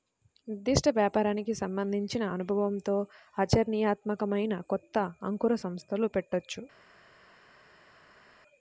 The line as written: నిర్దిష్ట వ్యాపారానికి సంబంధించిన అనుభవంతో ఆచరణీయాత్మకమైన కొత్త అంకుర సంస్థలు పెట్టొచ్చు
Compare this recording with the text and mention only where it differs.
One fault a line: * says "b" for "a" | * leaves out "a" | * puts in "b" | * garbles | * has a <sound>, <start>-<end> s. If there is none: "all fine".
all fine